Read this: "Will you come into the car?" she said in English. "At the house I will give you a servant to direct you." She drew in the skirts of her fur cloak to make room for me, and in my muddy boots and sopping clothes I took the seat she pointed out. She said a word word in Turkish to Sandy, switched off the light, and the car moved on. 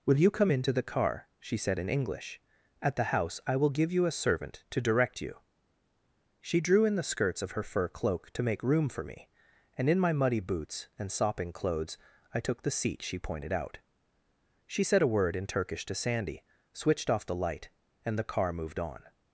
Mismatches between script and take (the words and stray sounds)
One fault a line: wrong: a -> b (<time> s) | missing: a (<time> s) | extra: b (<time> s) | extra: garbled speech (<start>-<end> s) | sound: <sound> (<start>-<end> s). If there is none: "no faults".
missing: word (15.4 s)